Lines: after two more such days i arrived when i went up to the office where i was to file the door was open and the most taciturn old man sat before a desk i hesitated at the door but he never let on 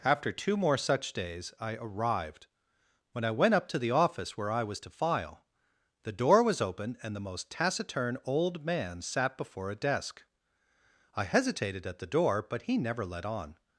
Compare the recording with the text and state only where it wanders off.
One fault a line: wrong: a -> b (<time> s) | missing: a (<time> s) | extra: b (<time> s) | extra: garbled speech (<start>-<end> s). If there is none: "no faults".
no faults